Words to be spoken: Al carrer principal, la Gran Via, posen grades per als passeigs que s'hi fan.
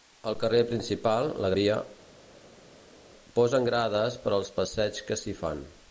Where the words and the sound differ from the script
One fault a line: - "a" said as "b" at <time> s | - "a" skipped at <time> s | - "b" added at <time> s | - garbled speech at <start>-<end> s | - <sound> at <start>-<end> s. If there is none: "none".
- "Gran" skipped at 1.5 s